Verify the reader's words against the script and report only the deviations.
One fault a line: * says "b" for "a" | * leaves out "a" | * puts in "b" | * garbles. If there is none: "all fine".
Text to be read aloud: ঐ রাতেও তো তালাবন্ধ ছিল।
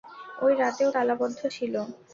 * leaves out "তো"